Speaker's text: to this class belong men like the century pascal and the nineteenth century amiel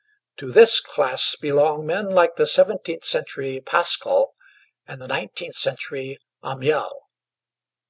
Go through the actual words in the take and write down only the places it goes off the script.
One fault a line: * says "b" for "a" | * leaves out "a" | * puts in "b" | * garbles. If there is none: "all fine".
* puts in "seventeenth"